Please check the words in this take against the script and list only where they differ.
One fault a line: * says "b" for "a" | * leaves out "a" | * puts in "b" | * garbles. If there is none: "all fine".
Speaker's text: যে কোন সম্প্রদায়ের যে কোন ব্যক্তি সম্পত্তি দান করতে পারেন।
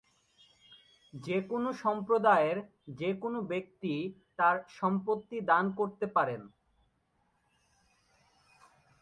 * puts in "তার"